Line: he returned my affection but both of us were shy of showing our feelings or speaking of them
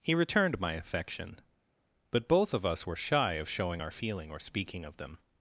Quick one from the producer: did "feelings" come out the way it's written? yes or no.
no